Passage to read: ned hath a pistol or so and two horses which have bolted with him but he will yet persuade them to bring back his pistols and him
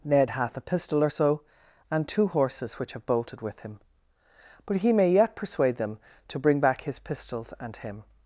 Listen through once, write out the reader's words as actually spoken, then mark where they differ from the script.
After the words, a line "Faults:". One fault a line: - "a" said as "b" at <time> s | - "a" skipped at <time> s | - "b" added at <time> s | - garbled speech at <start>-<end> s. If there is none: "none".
ned hath a pistol or so and two horses which have bolted with him but he may yet persuade them to bring back his pistols and him
Faults:
- "will" said as "may" at 4.9 s